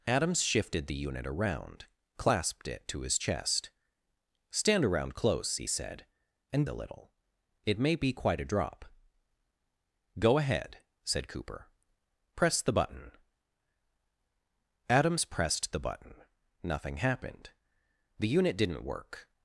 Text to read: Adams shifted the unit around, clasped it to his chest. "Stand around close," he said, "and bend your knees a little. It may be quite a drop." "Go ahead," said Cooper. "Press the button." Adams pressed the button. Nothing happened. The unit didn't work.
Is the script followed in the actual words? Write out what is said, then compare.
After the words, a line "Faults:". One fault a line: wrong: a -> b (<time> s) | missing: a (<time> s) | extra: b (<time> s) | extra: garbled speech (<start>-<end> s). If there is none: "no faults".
Adams shifted the unit around, clasped it to his chest. "Stand around close," he said, "and a little. It may be quite a drop." "Go ahead," said Cooper. "Press the button." Adams pressed the button. Nothing happened. The unit didn't work.
Faults:
missing: bend your knees (6.7 s)